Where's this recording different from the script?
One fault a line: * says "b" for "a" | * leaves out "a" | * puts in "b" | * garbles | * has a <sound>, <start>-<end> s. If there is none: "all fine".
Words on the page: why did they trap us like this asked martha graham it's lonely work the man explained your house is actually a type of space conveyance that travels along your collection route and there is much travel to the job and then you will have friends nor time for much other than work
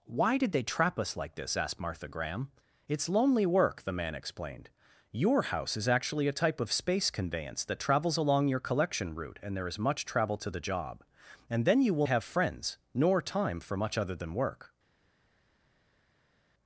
all fine